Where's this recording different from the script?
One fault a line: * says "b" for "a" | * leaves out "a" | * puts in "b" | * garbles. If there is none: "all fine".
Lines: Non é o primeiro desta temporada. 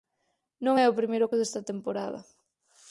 all fine